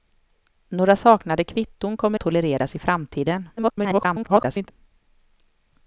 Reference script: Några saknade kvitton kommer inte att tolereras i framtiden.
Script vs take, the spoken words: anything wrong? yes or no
yes